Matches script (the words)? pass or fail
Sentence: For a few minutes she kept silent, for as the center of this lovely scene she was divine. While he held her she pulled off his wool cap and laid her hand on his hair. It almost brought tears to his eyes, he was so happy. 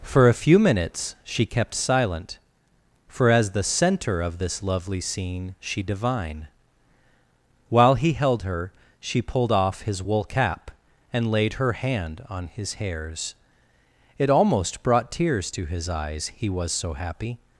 fail